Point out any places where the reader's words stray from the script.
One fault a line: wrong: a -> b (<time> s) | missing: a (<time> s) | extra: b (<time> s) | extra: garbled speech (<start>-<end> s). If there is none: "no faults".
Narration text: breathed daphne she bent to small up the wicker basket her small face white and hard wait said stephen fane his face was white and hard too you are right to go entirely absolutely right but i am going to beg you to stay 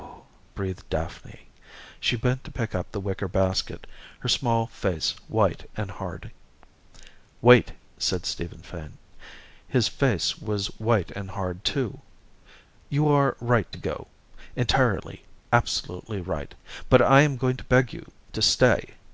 wrong: small -> pick (2.5 s)